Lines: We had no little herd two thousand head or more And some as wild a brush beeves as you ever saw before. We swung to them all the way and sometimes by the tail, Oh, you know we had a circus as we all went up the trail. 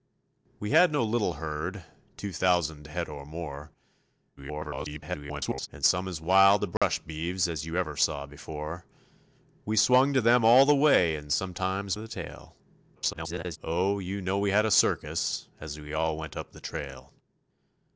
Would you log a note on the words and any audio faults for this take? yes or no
yes